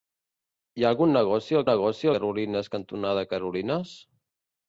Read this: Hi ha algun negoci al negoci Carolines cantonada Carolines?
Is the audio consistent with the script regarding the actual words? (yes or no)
yes